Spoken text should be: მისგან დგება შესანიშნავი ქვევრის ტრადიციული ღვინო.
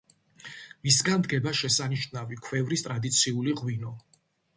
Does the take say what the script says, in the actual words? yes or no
yes